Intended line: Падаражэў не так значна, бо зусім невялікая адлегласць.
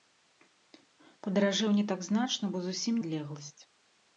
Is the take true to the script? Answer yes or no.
no